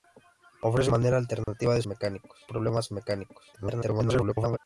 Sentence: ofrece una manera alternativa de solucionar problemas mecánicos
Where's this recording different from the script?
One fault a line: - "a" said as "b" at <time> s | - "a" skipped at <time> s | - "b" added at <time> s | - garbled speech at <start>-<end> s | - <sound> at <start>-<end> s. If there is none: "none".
- "una" skipped at 0.9 s
- dropout at 1.4-1.5 s
- "solucionar" said as "mecánicos" at 1.9 s
- garbled speech at 3.5-4.6 s